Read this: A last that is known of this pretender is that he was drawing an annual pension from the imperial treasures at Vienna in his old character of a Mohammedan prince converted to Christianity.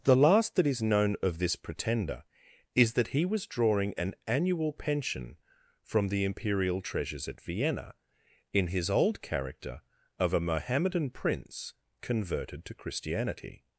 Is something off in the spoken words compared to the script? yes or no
yes